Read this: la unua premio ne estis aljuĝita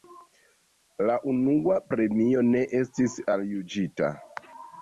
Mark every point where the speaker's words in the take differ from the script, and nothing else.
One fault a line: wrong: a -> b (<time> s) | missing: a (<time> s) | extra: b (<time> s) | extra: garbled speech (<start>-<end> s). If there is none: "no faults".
no faults